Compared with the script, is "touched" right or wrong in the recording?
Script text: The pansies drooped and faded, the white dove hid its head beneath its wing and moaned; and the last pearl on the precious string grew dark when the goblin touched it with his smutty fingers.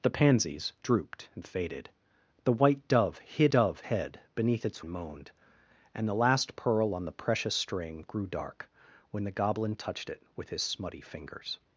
right